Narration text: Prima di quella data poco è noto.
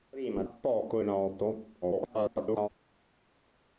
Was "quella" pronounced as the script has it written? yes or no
no